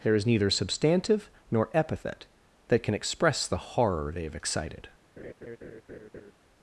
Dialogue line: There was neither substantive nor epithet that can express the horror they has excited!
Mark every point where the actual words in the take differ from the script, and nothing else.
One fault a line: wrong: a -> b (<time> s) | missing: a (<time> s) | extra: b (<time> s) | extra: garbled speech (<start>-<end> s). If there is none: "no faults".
wrong: was -> is (0.1 s)
wrong: has -> have (4.2 s)